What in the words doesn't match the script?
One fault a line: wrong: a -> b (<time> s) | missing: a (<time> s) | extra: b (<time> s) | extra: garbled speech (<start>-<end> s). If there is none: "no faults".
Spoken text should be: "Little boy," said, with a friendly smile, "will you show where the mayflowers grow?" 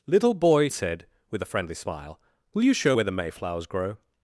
no faults